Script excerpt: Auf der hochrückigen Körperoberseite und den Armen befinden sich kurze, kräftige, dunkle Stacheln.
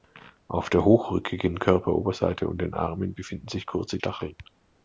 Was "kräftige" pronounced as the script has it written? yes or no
no